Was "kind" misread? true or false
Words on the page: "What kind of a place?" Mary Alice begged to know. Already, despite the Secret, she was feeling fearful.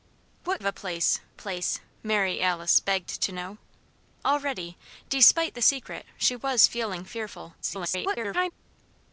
true